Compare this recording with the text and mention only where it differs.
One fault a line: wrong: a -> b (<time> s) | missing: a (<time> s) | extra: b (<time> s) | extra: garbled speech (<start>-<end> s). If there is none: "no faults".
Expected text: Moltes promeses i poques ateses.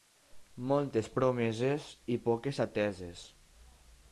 no faults